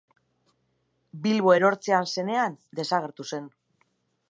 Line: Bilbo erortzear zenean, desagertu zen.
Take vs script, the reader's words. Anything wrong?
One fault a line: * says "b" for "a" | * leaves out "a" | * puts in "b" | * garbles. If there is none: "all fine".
all fine